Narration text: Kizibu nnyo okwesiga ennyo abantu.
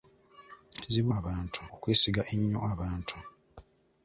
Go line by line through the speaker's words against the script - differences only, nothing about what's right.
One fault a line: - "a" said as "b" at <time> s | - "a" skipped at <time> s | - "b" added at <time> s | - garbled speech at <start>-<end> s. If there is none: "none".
- "nnyo" said as "abantu" at 1.2 s